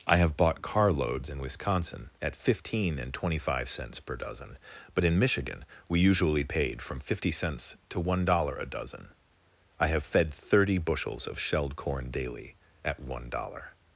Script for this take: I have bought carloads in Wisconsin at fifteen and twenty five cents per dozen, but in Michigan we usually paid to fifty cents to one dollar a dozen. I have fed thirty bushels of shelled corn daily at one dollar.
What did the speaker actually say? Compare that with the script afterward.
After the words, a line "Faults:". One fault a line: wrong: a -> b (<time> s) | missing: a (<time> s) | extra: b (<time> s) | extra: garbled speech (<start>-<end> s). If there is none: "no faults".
I have bought carloads in Wisconsin at fifteen and twenty five cents per dozen, but in Michigan we usually paid from fifty cents to one dollar a dozen. I have fed thirty bushels of shelled corn daily at one dollar.
Faults:
wrong: to -> from (6.8 s)